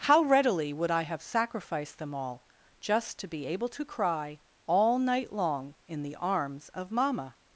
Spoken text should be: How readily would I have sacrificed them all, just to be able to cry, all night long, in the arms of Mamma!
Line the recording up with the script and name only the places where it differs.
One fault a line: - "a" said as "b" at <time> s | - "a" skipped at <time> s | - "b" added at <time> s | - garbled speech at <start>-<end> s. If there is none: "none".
none